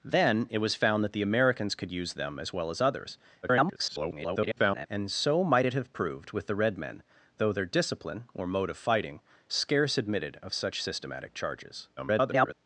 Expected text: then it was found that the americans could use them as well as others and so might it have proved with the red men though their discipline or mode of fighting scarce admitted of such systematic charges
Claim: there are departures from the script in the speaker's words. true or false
true